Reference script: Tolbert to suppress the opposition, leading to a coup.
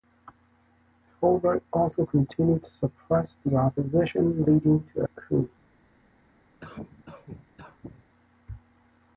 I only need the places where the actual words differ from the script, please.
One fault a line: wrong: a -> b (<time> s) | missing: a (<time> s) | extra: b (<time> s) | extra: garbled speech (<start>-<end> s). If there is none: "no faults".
extra: also continued (1.7 s)